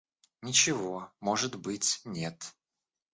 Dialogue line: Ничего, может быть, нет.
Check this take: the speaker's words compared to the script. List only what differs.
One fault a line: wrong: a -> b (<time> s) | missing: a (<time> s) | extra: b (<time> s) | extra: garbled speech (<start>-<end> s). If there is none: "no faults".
no faults